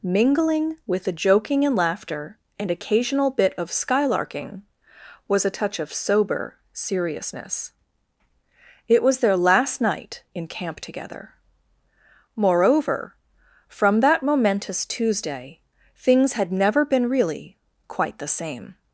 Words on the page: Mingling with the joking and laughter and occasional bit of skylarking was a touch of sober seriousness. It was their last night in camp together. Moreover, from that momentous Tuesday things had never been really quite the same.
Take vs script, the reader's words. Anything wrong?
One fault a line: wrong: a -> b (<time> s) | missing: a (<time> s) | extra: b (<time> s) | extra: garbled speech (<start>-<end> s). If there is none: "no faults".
no faults